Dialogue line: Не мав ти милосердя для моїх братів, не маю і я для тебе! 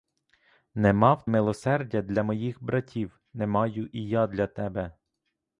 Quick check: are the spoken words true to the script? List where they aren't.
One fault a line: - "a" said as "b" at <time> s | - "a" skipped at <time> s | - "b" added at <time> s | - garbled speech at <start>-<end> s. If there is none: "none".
- "ти" skipped at 1.3 s